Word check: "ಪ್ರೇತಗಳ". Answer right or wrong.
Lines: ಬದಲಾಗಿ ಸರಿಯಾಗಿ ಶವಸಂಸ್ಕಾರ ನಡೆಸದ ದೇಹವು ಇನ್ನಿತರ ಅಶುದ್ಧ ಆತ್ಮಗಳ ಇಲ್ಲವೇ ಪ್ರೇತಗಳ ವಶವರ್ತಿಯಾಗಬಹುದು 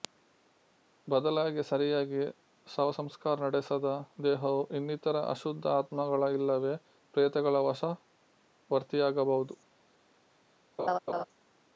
right